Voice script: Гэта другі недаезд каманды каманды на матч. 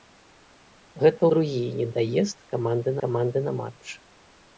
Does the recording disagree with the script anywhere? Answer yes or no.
no